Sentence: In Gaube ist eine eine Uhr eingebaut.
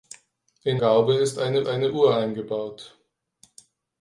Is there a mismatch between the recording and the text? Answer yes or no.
no